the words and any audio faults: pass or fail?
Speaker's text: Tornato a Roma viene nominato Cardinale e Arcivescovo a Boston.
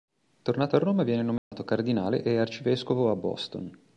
fail